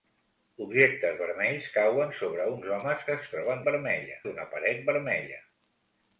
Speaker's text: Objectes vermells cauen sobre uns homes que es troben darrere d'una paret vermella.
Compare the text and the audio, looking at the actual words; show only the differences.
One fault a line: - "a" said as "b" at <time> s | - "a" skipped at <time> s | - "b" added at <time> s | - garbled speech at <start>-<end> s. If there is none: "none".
- "darrere" said as "vermella" at 3.7 s